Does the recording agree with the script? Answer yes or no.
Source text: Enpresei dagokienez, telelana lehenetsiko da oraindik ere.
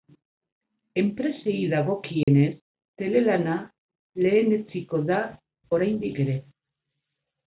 yes